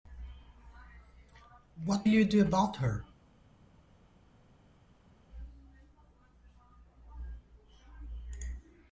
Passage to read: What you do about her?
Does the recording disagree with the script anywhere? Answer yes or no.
no